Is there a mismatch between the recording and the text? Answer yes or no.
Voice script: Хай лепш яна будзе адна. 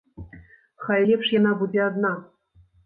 no